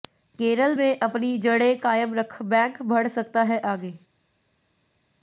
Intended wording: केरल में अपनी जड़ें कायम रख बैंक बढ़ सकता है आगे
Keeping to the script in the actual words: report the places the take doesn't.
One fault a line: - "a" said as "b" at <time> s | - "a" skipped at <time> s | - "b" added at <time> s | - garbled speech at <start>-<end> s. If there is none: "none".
none